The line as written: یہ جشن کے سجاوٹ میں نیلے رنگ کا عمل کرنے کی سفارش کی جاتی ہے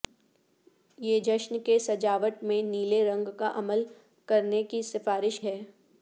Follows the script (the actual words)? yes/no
no